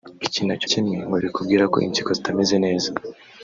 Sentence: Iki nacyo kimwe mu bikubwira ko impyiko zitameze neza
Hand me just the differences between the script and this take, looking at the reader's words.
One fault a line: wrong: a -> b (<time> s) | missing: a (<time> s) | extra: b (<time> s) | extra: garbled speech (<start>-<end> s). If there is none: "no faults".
no faults